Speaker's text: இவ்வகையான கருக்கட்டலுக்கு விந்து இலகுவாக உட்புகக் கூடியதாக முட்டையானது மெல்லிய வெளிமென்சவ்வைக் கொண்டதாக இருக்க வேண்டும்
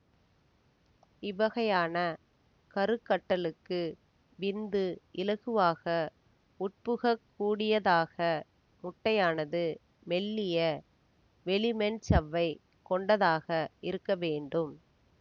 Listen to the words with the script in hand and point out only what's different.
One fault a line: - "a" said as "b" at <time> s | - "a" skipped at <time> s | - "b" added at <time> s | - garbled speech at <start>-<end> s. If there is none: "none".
none